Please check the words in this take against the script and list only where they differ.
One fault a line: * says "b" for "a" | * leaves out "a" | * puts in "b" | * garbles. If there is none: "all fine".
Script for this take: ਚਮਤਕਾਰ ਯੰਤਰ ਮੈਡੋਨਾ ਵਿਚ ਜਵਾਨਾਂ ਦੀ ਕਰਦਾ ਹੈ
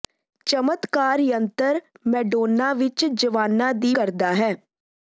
all fine